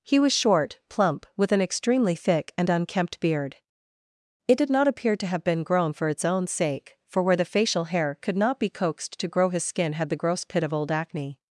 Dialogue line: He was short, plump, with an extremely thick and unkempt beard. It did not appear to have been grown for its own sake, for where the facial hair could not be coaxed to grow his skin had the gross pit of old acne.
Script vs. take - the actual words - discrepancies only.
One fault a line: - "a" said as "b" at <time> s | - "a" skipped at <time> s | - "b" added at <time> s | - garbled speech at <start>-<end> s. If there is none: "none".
none